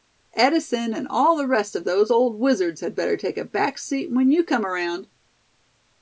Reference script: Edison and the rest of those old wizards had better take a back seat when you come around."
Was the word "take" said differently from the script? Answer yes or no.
no